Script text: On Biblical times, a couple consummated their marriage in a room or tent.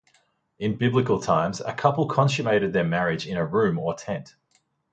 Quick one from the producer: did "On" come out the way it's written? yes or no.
no